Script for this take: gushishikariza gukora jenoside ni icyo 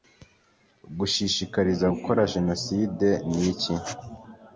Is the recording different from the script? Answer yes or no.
yes